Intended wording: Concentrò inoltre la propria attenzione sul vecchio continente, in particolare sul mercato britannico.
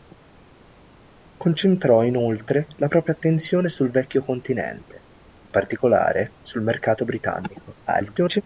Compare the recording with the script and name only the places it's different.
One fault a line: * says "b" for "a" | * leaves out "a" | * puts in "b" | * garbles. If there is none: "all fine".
* garbles